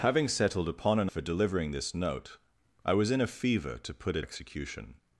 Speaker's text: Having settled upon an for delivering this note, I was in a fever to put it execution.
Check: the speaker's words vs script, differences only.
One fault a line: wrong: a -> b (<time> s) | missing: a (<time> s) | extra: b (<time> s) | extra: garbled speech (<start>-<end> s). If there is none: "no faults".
no faults